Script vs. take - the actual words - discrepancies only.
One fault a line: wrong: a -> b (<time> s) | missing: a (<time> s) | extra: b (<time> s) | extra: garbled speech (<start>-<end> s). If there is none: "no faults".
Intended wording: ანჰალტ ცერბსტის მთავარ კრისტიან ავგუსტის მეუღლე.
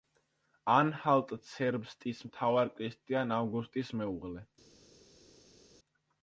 no faults